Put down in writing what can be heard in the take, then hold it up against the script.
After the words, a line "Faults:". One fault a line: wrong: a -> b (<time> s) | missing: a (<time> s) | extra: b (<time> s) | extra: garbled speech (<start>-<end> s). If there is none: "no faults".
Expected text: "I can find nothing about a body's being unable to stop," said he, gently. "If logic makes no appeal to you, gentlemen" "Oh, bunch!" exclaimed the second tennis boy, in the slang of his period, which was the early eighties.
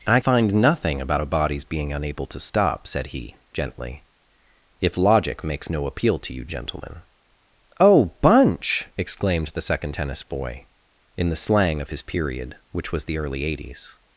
"I find nothing about a body's being unable to stop," said he, gently. "If logic makes no appeal to you, gentlemen" "Oh, bunch!" exclaimed the second tennis boy, in the slang of his period, which was the early eighties.
Faults:
missing: can (0.2 s)